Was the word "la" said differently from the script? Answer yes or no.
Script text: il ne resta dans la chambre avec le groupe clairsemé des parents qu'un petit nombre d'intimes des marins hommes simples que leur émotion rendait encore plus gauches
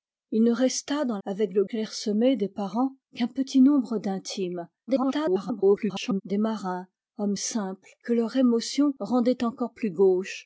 yes